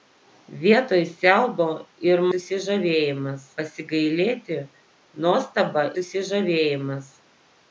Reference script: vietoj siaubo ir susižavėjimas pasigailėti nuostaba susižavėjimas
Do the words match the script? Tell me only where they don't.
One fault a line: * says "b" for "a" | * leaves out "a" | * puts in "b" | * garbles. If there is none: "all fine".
all fine